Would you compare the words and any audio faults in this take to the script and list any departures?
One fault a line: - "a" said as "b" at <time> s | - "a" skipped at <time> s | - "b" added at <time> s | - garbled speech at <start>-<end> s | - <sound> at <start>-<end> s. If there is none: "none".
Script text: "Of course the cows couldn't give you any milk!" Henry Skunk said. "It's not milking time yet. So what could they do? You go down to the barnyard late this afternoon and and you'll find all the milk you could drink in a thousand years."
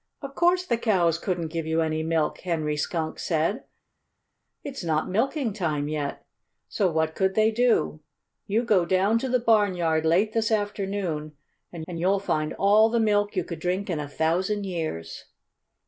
none